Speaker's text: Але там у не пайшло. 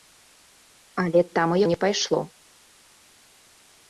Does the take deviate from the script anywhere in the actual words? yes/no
no